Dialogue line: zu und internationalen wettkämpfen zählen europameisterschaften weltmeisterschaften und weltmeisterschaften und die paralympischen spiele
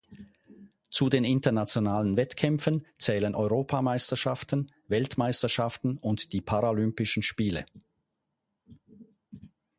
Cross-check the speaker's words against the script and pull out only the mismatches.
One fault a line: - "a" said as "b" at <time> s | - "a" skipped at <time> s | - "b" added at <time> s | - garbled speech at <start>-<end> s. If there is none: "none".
- "und" said as "den" at 1.1 s
- "weltmeisterschaften und" skipped at 6.3 s